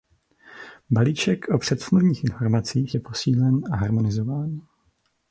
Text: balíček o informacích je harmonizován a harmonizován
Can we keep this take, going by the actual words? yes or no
no